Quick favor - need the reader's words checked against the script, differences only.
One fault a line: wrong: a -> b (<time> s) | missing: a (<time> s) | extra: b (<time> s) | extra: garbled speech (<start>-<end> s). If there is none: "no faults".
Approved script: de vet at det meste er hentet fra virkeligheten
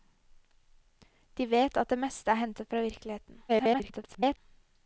extra: garbled speech (3.5-4.4 s)